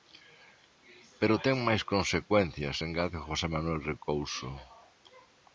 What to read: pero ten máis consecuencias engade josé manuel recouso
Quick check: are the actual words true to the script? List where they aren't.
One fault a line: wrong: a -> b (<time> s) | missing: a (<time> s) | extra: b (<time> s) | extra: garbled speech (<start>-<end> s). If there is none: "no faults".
no faults